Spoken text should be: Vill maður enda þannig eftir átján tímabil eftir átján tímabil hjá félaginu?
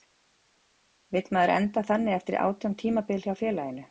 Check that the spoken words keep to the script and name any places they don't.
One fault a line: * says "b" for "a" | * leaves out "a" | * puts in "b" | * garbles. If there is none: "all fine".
* leaves out "eftir átján tímabil"